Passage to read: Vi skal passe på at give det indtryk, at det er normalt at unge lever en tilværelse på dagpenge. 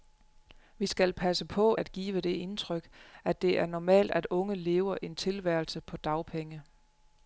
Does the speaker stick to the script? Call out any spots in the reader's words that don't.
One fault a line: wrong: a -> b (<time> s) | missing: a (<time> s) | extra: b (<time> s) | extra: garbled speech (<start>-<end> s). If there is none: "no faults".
no faults